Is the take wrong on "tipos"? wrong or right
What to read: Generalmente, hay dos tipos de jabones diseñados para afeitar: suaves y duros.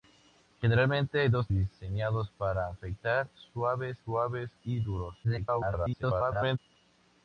wrong